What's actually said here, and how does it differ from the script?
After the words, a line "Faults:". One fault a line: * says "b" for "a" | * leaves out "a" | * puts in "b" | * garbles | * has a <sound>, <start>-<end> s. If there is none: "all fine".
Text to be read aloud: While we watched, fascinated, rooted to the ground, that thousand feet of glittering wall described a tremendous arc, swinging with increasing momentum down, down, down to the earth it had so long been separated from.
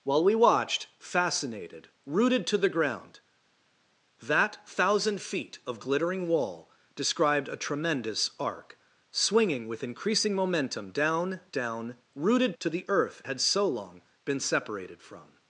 While we watched, fascinated, rooted to the ground, that thousand feet of glittering wall described a tremendous arc, swinging with increasing momentum down, down, rooted to the earth had so long been separated from.
Faults:
* says "rooted" for "down"
* leaves out "it"